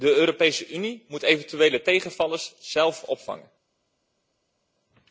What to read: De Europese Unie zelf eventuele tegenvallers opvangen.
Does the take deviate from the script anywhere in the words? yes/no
yes